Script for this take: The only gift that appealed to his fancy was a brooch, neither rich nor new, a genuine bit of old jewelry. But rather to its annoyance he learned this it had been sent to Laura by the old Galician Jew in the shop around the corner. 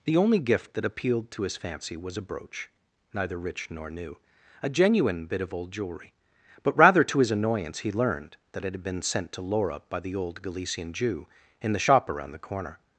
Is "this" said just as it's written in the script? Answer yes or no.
no